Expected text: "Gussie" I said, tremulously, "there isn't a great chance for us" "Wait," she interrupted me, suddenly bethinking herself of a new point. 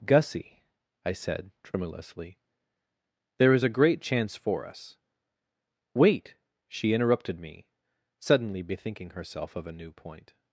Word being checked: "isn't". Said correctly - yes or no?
no